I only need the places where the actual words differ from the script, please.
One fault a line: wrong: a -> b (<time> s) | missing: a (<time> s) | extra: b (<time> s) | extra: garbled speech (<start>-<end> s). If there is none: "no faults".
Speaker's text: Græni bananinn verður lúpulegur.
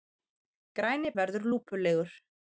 missing: bananinn (1.1 s)